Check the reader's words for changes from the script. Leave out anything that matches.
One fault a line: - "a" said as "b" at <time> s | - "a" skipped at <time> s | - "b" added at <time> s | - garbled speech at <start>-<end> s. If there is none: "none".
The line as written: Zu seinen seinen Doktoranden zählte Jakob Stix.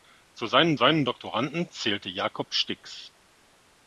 none